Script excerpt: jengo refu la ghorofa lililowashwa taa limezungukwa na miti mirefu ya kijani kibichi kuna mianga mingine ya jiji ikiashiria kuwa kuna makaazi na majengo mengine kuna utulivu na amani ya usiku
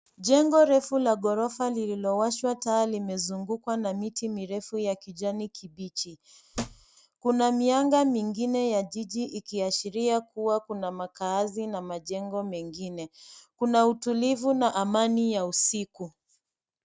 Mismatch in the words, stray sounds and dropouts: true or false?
true